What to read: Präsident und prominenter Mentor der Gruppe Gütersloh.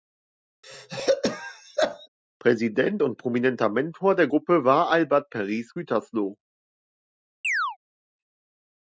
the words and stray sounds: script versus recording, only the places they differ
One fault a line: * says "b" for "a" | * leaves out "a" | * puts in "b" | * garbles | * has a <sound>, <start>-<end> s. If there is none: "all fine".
* has a throat clearing, 0.6-2.1 s
* puts in "war Albert Paris"
* has a chirp, 7.4-7.8 s